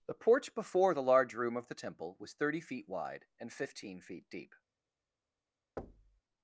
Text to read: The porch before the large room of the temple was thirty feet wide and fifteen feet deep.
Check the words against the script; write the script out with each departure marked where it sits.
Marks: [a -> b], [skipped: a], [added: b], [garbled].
The porch before the large room of the temple was thirty feet wide and fifteen feet deep.